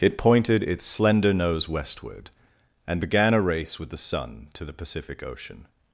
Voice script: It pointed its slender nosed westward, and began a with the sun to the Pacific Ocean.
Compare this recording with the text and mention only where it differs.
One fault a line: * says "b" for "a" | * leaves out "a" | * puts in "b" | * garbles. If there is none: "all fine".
* says "nose" for "nosed"
* puts in "race"